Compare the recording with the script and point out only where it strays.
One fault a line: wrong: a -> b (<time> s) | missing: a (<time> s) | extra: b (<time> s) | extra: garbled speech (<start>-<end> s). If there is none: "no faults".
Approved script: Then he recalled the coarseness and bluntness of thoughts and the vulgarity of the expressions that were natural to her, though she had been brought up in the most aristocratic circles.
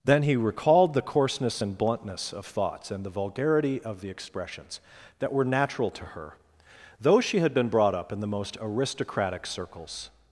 no faults